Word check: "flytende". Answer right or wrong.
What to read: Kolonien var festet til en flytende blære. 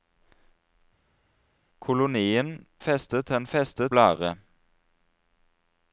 wrong